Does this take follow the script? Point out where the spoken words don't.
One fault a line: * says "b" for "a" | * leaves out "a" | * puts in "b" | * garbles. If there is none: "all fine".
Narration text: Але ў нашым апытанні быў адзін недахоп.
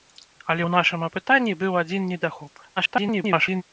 * garbles